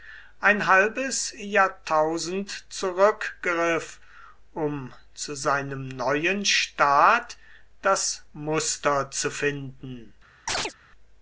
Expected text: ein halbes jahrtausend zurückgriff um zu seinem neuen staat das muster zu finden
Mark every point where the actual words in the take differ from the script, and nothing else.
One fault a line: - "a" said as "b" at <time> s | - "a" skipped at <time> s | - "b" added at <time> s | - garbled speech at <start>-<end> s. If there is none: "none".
none